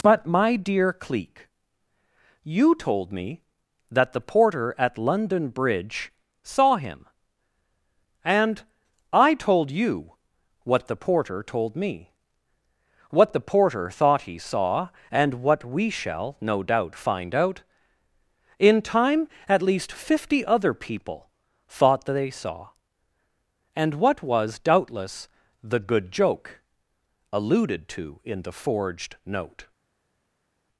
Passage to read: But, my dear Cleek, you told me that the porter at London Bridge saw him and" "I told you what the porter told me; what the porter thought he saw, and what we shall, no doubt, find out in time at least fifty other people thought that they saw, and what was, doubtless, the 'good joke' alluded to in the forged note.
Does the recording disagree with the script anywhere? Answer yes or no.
no